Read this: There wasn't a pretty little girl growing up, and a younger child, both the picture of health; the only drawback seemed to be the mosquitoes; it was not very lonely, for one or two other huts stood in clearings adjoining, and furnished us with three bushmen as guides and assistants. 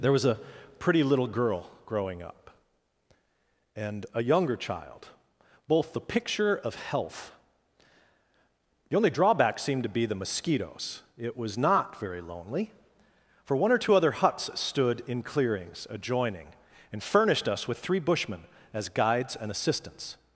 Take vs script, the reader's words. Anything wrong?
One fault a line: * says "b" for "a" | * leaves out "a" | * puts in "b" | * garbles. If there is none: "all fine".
* says "was" for "wasn't"